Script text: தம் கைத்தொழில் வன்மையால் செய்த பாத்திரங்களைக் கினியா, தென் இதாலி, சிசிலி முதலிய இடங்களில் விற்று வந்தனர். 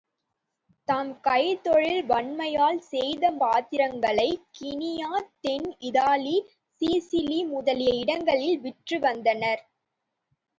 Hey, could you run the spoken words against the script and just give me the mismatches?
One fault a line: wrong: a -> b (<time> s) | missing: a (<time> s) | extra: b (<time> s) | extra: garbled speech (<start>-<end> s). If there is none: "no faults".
no faults